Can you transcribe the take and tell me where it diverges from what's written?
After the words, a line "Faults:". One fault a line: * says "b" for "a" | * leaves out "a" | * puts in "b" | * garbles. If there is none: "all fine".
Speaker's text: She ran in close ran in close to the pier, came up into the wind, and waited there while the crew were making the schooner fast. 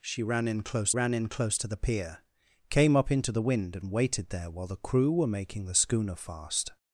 She ran in close ran in close to the pier, came up into the wind, and waited there while the crew were making the schooner fast.
Faults:
all fine